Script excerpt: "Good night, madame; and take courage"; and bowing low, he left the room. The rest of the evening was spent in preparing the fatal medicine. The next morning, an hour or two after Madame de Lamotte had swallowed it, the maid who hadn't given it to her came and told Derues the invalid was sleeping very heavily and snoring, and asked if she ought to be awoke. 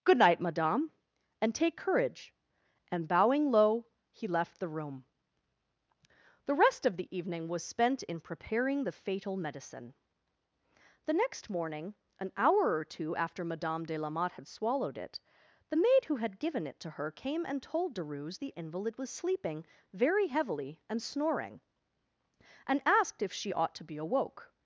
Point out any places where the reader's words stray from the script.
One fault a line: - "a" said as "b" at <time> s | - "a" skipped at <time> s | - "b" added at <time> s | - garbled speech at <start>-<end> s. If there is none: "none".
- "hadn't" said as "had" at 16.1 s